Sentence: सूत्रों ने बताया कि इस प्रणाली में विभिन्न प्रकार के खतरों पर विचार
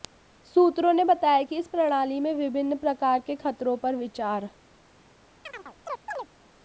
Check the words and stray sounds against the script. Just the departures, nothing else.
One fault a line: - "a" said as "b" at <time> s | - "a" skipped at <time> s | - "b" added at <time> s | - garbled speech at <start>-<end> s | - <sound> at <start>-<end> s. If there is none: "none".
- chirp at 5.5-6.3 s